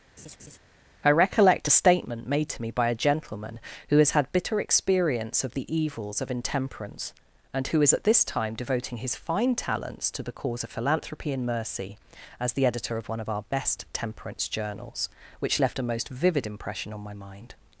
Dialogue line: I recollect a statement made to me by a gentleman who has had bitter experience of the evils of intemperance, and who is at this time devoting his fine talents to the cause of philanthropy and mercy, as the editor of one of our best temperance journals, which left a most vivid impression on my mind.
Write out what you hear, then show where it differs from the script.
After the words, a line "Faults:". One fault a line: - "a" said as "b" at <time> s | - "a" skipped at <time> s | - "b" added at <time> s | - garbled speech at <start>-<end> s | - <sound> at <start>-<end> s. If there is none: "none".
I recollect a statement made to me by a gentleman who has had bitter experience of the evils of intemperance, and who is at this time devoting his fine talents to the cause of philanthropy and mercy, as the editor of one of our best temperance journals, which left a most vivid impression on my mind.
Faults:
- laugh at 0.2-0.6 s